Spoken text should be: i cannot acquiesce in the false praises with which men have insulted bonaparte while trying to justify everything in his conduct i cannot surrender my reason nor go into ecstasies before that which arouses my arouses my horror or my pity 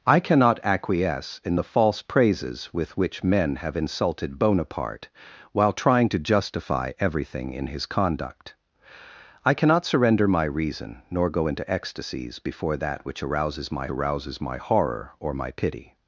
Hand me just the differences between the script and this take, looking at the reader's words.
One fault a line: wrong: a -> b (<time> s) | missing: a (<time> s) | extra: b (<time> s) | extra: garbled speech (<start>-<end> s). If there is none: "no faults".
no faults